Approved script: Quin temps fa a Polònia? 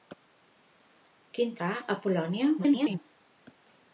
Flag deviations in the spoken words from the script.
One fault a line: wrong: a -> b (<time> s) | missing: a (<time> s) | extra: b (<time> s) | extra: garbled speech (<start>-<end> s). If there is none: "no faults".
missing: temps (1.5 s)
extra: garbled speech (2.6-3.0 s)